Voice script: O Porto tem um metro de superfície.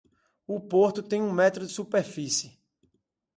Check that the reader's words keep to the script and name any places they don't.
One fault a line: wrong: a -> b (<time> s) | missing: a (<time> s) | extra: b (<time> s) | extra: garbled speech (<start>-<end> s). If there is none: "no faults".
no faults